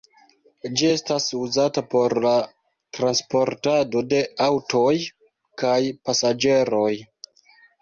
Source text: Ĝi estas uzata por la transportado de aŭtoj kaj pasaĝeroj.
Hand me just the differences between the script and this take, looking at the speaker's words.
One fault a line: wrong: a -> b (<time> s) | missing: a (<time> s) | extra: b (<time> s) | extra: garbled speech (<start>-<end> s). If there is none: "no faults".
no faults